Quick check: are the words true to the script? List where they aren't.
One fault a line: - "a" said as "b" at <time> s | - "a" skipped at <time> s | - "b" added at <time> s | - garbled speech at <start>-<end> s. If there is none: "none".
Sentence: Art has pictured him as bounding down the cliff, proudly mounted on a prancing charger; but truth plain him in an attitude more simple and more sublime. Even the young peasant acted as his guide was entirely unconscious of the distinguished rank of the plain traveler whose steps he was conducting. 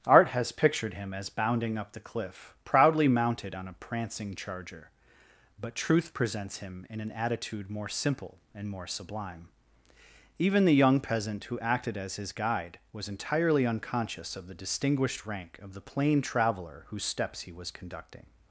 - "down" said as "up" at 1.8 s
- "plain" said as "presents" at 6.1 s
- "who" added at 11.4 s